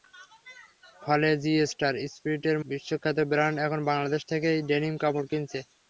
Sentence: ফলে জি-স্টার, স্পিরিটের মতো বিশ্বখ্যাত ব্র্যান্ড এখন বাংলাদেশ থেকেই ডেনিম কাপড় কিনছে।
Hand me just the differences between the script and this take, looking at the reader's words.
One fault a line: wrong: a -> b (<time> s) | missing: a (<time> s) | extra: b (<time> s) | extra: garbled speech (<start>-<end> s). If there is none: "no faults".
missing: মতো (2.6 s)